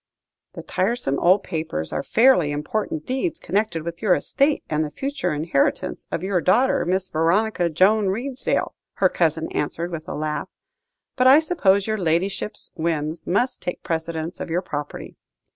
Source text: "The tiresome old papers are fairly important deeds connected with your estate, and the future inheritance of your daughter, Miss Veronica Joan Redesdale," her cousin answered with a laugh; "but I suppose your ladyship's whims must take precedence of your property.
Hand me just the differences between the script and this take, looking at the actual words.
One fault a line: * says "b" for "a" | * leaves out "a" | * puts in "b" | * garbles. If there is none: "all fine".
all fine